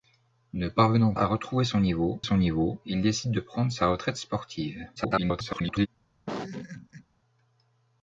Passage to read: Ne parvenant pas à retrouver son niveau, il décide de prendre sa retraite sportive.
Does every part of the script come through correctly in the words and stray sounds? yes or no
no